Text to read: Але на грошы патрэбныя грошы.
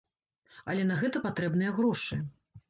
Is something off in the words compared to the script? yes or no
yes